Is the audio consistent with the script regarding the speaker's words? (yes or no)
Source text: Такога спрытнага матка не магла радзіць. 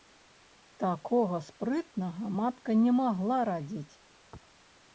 yes